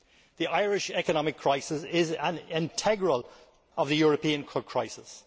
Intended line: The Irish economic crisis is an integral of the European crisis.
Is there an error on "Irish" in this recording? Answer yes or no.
no